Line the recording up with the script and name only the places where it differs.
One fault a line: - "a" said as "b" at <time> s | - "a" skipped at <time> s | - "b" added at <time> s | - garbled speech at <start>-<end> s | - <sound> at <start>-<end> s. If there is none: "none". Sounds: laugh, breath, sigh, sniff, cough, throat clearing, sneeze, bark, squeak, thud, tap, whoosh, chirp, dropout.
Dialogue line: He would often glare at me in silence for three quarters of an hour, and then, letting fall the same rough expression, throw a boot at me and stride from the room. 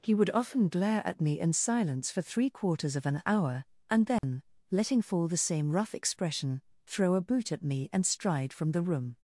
- dropout at 4.2-4.2 s